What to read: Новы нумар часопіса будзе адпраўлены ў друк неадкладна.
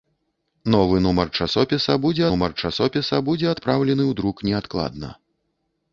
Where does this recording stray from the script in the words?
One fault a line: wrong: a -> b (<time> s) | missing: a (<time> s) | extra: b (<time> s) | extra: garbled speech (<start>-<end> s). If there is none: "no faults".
extra: нумар часопіса будзе (2.3 s)